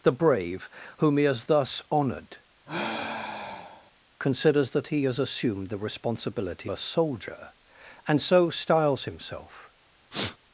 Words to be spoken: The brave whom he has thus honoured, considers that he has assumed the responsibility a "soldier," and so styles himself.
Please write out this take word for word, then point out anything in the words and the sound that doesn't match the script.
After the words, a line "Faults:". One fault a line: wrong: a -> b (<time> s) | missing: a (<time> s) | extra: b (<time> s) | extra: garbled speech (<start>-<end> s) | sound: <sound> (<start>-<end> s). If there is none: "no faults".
The brave whom he has thus honoured, considers that he has assumed the responsibility a "soldier," and so styles himself.
Faults:
sound: sigh (2.7-3.9 s)
sound: sniff (10.1-10.4 s)